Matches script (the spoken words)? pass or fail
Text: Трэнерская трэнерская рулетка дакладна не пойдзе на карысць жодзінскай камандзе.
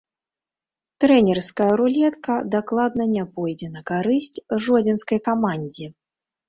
fail